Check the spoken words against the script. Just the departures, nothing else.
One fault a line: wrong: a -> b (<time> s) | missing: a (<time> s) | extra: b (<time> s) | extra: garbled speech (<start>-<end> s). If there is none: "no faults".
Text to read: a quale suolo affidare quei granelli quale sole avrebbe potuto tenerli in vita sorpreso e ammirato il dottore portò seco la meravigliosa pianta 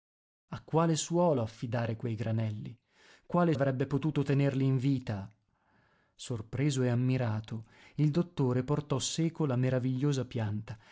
missing: sole (3.5 s)